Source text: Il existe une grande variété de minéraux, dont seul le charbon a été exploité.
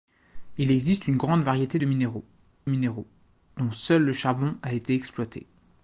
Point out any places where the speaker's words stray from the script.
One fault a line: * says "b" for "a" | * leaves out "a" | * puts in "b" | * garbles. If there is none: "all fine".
* puts in "minéraux"